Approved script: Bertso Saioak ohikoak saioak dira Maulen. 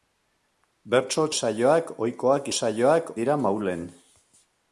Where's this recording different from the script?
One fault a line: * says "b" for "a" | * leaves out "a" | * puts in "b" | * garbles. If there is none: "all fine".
all fine